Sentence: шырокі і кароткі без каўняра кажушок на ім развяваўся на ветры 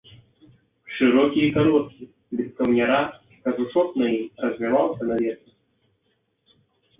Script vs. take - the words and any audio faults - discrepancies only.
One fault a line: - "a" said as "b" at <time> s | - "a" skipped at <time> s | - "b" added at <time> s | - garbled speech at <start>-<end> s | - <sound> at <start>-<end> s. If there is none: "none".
none